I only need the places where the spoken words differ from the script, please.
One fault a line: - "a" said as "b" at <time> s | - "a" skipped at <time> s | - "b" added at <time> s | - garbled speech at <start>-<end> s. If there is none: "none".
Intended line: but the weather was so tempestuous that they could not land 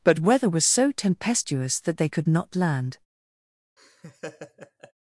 - "the" skipped at 0.2 s